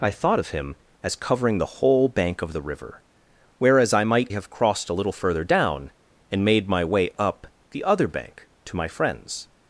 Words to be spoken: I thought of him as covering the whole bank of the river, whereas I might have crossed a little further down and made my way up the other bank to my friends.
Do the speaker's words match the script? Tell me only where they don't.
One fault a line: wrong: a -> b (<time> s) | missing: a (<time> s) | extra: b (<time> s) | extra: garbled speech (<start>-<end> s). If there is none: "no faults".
no faults